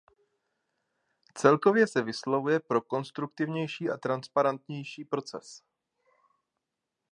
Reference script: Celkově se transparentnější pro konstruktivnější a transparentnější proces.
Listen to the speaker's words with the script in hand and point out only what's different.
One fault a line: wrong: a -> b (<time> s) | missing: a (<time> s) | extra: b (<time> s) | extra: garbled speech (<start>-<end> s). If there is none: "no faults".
wrong: transparentnější -> vyslovuje (2.0 s)